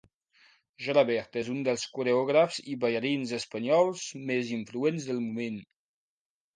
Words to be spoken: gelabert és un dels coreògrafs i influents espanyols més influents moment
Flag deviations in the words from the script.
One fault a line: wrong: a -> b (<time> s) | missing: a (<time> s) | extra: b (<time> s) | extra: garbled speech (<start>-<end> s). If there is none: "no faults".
wrong: influents -> ballarins (2.9 s)
extra: del (5.1 s)